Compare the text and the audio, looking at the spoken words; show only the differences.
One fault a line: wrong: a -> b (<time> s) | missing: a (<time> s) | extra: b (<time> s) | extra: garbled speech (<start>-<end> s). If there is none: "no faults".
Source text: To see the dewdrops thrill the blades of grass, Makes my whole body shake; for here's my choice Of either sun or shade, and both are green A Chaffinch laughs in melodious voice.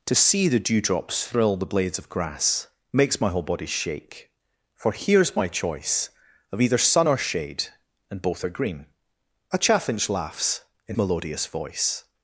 no faults